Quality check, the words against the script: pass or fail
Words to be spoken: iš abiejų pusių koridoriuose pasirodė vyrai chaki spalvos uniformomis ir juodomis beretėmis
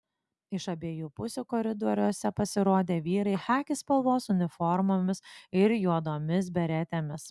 pass